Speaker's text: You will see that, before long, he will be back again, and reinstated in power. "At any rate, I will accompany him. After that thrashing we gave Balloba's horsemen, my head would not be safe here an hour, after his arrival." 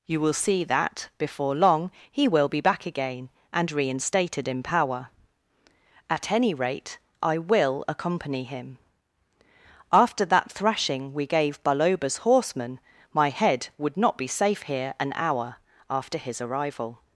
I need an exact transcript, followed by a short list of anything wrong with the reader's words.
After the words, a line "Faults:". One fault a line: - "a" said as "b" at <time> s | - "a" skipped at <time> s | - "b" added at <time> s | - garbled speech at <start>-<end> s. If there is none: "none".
You will see that, before long, he will be back again, and reinstated in power. "At any rate, I will accompany him. After that thrashing we gave Balloba's horsemen, my head would not be safe here an hour, after his arrival."
Faults:
none